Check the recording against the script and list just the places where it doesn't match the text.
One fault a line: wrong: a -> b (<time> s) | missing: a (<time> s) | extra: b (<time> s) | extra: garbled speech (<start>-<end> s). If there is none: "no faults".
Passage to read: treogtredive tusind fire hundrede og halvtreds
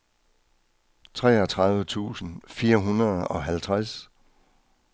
no faults